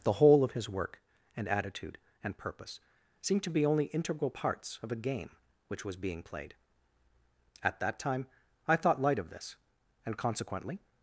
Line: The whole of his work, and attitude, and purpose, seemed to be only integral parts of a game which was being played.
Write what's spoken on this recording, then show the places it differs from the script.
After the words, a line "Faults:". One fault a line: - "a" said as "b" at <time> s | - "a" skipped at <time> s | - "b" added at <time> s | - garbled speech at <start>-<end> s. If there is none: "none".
The whole of his work, and attitude, and purpose, seemed to be only integral parts of a game which was being played. At that time I thought light of this, and consequently
Faults:
- "At that time I thought light of this and consequently" added at 7.6 s